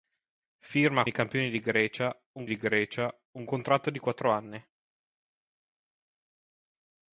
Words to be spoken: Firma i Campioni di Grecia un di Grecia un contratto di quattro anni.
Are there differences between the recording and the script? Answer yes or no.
no